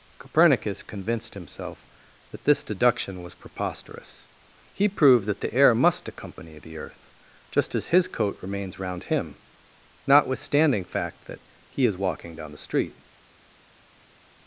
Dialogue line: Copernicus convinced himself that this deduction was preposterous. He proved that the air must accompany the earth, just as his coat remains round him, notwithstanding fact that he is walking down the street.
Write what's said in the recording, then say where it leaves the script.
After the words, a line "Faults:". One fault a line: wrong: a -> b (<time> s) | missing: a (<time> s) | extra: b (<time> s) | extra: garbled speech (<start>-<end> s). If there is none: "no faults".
Copernicus convinced himself that this deduction was preposterous. He proved that the air must accompany the earth, just as his coat remains round him, notwithstanding fact that he is walking down the street.
Faults:
no faults